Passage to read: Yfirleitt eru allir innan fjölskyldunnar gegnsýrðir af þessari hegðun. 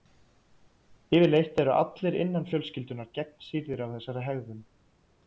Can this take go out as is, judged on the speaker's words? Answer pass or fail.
pass